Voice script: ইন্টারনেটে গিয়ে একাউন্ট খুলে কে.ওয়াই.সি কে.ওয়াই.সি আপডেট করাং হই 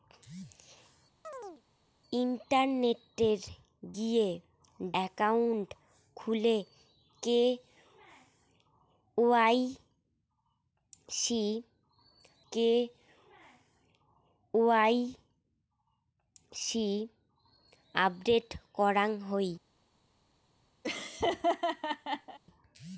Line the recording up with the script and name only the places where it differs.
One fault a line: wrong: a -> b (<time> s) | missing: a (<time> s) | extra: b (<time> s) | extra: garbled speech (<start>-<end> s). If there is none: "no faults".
no faults